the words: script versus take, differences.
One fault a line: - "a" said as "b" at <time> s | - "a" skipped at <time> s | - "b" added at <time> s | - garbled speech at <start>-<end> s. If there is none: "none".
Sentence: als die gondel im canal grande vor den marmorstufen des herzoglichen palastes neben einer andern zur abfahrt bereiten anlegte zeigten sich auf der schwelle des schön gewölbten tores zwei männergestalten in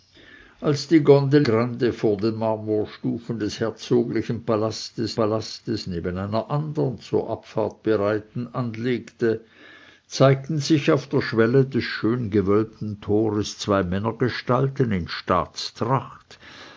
- "im canal" skipped at 1.4 s
- "palastes" added at 5.2 s